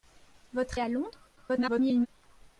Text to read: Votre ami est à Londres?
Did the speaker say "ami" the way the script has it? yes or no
no